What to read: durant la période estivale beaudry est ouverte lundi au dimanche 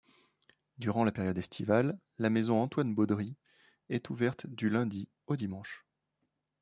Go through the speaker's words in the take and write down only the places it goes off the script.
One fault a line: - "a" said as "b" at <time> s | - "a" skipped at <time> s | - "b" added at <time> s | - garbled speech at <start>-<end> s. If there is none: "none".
- "la maison antoine" added at 2.2 s
- "du" added at 4.5 s